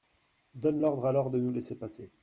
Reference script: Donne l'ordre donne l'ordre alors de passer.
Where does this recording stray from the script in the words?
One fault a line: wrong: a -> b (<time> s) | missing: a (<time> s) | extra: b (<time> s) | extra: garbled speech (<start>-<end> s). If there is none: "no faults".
wrong: donne l'ordre alors de -> alors de nous laisser (1.0 s)